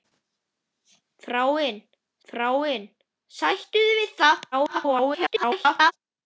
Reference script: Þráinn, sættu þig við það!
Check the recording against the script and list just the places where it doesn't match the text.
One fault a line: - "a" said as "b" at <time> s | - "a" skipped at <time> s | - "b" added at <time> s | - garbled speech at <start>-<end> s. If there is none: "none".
- "þráinn" added at 2.3 s
- garbled speech at 4.5-5.9 s